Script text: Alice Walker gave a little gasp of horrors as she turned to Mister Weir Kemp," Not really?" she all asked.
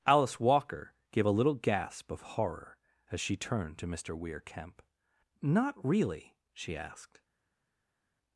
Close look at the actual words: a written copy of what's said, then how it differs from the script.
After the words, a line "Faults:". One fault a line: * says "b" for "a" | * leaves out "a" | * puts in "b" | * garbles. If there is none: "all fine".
Alice Walker gave a little gasp of horror as she turned to Mister Weir Kemp," Not really?" she asked.
Faults:
* says "horror" for "horrors"
* leaves out "all"